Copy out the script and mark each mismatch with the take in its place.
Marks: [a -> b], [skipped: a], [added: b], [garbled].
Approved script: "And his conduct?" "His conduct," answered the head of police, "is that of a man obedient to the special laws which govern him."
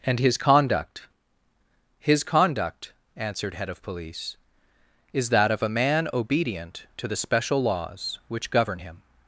"And his conduct?" "His conduct," answered [skipped: the] head of police, "is that of a man obedient to the special laws which govern him."